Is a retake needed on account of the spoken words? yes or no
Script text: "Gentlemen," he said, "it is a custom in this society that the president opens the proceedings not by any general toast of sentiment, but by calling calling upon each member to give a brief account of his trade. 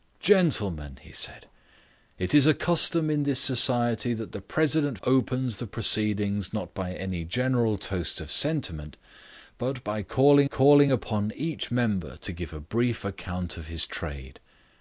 no